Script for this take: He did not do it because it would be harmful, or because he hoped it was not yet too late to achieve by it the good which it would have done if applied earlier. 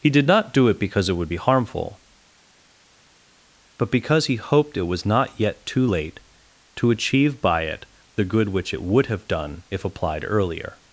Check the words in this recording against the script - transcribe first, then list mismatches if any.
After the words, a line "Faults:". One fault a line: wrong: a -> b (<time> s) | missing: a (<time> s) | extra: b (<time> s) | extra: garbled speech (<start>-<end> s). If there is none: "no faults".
He did not do it because it would be harmful, but because he hoped it was not yet too late to achieve by it the good which it would have done if applied earlier.
Faults:
wrong: or -> but (3.8 s)